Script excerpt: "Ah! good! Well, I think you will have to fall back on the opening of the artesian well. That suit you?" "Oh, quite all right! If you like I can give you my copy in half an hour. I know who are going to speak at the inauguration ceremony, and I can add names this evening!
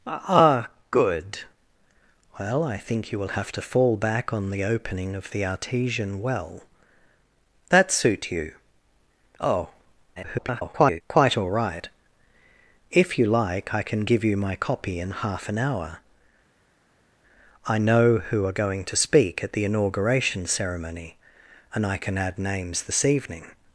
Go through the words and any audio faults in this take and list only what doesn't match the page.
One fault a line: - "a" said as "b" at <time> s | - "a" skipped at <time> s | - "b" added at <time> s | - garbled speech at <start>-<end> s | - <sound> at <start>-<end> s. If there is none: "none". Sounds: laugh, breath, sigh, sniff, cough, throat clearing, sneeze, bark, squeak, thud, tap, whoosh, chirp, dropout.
- garbled speech at 10.2-11.0 s